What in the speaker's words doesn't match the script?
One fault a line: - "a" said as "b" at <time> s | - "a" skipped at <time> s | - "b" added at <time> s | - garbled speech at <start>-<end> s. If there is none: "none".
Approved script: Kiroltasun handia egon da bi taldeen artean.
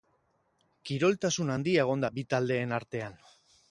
none